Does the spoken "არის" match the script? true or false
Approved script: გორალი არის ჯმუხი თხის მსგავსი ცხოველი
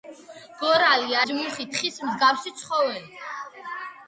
false